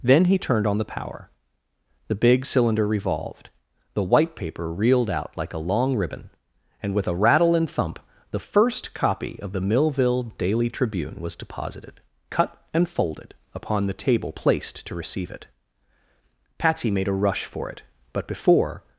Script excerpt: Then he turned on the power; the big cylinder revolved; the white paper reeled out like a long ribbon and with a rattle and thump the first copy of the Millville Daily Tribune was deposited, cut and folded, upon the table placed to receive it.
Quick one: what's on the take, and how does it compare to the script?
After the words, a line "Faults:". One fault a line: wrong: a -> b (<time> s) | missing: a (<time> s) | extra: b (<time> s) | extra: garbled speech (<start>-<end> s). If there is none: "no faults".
Then he turned on the power; the big cylinder revolved; the white paper reeled out like a long ribbon and with a rattle and thump the first copy of the Millville Daily Tribune was deposited, cut and folded, upon the table placed to receive it. Patsy made a rush for it, but before
Faults:
extra: Patsy made a rush for it but before (16.6 s)